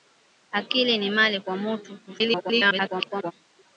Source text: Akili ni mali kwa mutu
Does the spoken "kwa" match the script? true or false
true